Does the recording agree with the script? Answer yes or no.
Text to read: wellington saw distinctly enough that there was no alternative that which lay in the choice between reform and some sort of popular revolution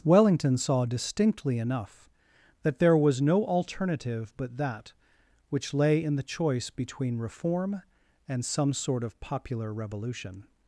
no